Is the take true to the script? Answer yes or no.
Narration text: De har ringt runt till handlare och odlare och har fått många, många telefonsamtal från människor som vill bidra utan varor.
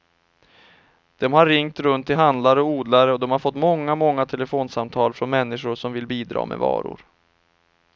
no